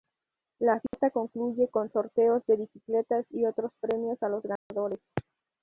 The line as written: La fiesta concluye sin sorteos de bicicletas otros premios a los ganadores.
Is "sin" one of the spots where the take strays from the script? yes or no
yes